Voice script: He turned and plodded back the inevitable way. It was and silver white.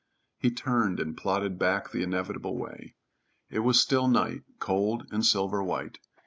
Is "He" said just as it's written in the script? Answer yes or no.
yes